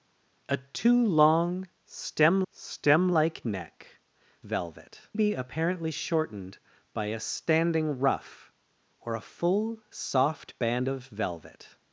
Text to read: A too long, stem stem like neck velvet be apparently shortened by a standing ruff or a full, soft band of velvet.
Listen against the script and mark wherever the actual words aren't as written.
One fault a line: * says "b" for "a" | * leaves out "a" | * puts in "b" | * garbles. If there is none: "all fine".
all fine